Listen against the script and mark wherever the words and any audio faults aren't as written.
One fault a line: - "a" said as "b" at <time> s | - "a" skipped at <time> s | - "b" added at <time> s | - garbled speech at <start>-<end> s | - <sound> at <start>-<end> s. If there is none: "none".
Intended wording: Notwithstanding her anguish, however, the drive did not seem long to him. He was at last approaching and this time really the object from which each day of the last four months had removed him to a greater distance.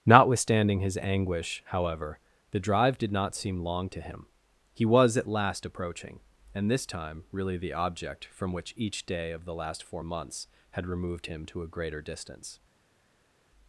- "her" said as "his" at 0.8 s